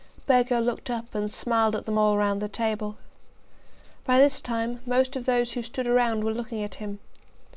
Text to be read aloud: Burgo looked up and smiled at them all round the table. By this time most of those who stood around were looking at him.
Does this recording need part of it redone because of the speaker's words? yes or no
no